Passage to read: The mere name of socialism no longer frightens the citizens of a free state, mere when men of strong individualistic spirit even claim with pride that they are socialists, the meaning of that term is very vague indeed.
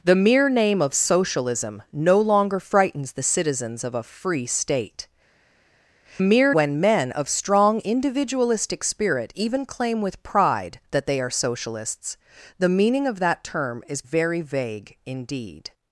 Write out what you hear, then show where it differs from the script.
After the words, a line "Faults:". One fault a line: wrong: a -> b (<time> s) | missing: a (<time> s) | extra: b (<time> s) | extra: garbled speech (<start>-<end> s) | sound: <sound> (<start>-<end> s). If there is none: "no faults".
The mere name of socialism no longer frightens the citizens of a free state, mere when men of strong individualistic spirit even claim with pride that they are socialists, the meaning of that term is very vague indeed.
Faults:
no faults